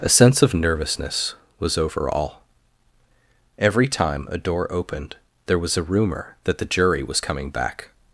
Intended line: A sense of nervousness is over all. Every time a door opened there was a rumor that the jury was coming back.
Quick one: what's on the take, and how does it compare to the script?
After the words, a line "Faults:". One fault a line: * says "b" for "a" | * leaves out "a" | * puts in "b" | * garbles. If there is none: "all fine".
A sense of nervousness was over all. Every time a door opened there was a rumor that the jury was coming back.
Faults:
* says "was" for "is"